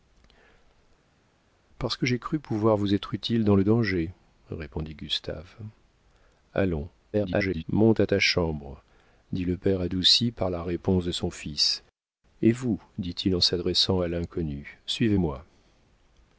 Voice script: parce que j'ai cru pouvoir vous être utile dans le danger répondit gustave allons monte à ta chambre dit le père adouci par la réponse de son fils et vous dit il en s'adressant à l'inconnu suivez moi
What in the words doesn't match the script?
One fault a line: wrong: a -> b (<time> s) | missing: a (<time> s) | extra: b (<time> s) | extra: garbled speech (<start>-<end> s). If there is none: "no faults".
extra: garbled speech (7.1-7.6 s)